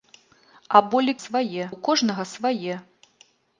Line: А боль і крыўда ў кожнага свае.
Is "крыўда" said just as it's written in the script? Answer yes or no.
no